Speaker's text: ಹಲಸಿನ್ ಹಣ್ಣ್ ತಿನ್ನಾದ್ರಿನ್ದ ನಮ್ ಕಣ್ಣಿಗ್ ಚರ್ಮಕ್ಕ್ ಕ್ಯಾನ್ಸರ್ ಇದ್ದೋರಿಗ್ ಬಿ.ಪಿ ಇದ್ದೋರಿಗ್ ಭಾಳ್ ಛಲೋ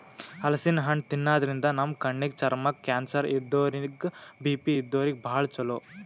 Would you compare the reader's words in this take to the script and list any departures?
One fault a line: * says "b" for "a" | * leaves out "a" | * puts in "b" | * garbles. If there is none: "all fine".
all fine